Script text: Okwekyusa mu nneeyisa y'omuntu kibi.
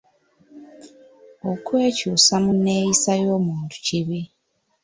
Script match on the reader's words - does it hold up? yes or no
yes